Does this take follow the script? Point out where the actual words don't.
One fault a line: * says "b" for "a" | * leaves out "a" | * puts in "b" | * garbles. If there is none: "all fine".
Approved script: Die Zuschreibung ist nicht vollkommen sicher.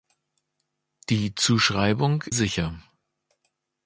* leaves out "ist nicht vollkommen"